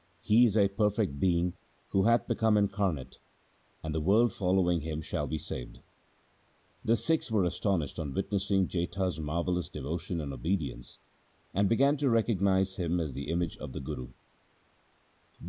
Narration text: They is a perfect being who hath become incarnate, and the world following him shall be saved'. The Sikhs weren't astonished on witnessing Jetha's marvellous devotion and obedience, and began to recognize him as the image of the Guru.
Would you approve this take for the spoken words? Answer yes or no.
no